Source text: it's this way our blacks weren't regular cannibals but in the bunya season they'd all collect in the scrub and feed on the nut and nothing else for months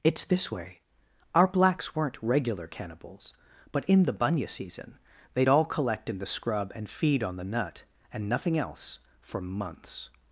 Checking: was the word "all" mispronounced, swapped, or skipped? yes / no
no